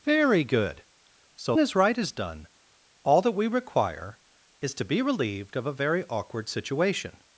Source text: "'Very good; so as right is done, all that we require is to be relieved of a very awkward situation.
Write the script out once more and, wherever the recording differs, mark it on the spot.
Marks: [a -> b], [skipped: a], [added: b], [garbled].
"'Very good; so as right is done, all that we require is to be relieved of a very awkward situation.